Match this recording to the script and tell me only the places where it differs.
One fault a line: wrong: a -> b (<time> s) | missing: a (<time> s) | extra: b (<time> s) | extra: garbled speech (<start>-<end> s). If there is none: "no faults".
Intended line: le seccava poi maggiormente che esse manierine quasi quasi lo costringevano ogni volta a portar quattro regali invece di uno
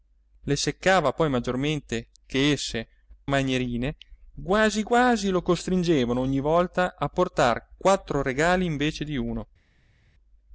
no faults